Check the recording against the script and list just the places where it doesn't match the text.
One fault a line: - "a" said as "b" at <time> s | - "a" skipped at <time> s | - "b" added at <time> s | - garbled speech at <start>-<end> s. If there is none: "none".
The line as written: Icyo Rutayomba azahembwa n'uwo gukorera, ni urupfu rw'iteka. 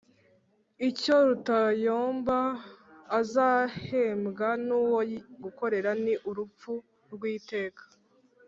none